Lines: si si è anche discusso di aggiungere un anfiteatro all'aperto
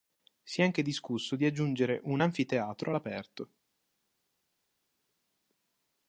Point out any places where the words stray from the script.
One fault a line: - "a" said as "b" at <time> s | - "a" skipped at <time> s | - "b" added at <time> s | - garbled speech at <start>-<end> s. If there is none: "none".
- "si" skipped at 0.6 s